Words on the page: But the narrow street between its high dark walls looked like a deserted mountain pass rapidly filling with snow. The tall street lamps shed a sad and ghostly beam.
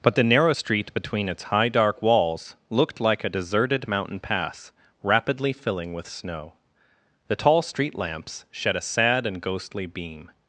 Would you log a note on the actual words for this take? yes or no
no